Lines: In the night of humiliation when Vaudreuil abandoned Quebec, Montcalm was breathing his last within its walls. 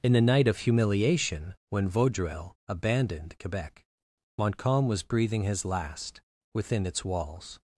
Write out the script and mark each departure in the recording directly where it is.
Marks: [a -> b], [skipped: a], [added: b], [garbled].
In the night of humiliation when Vaudreuil abandoned Quebec, Montcalm was breathing his last within its walls.